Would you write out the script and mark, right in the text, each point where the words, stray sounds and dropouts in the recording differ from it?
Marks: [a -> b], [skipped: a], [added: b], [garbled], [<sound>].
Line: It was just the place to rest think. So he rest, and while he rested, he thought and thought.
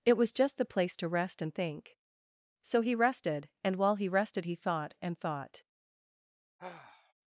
It was just the place to rest [added: and] think. So he [rest, -> rested] and while he rested, he thought and thought. [sigh]